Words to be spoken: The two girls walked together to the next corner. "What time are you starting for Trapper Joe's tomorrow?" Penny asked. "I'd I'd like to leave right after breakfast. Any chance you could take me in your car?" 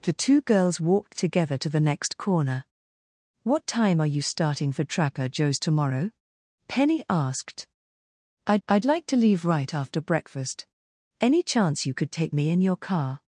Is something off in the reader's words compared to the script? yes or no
no